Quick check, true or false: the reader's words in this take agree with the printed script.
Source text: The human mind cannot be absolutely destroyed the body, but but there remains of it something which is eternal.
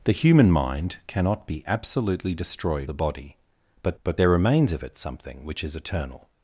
true